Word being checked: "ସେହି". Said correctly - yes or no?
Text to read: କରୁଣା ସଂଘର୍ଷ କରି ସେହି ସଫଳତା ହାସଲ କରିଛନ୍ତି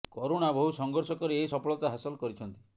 no